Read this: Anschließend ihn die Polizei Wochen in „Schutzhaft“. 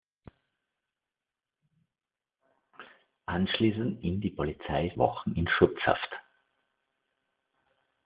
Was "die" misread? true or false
false